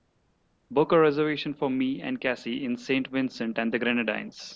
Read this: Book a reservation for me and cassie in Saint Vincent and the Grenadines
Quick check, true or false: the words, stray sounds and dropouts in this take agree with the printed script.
true